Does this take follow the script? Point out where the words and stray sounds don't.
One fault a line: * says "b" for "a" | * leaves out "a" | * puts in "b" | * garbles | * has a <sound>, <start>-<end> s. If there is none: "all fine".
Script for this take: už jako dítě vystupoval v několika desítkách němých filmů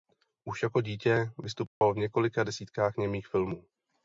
* has a dropout, 1.7-1.8 s